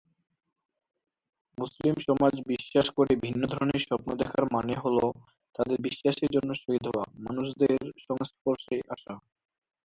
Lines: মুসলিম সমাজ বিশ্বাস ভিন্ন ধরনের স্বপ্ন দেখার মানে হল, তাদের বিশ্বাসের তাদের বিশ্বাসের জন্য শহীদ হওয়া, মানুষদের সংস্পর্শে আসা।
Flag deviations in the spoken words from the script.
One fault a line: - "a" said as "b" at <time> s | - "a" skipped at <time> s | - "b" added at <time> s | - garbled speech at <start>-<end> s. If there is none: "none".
- "করে" added at 3.0 s
- "তাদের বিশ্বাসের" skipped at 6.3 s